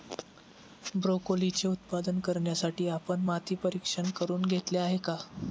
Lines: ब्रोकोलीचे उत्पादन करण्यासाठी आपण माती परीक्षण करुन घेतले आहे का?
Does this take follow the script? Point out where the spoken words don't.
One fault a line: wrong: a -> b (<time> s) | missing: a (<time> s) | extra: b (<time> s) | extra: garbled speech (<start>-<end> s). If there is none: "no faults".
no faults